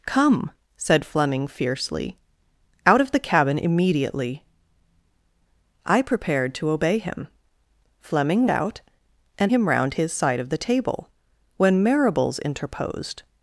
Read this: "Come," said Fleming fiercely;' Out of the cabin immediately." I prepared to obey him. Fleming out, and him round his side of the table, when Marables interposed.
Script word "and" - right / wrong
right